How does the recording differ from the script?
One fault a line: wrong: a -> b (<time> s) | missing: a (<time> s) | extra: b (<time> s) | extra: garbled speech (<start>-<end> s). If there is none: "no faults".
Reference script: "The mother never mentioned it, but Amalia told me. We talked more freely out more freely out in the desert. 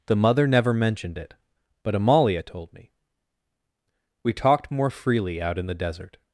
missing: more freely out (5.6 s)